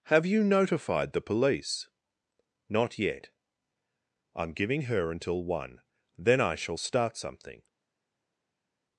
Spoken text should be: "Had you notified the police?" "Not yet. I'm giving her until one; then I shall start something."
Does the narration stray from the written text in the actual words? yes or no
yes